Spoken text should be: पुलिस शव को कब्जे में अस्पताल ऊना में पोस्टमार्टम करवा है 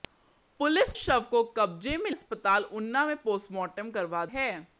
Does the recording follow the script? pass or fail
pass